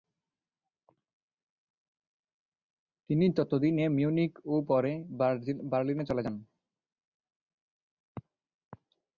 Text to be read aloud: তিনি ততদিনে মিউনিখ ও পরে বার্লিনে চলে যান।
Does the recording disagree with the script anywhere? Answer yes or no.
no